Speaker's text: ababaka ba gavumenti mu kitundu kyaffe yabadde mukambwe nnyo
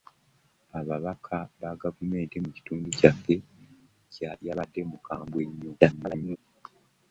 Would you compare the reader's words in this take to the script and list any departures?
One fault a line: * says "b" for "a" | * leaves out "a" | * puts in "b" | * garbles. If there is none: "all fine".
* garbles